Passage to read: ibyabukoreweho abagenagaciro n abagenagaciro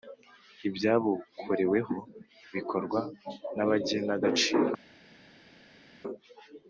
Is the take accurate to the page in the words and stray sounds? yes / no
no